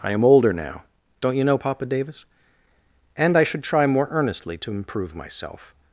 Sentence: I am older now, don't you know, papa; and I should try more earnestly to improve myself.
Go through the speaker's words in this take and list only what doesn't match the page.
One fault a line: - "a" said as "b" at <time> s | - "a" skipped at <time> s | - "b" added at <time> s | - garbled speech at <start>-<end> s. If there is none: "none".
- "davis" added at 1.9 s